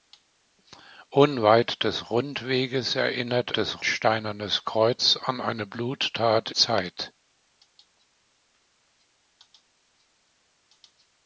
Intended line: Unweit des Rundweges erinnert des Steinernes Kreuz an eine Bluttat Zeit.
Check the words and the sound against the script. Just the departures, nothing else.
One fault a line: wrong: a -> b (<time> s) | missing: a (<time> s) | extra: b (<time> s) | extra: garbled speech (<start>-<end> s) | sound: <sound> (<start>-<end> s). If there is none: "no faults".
no faults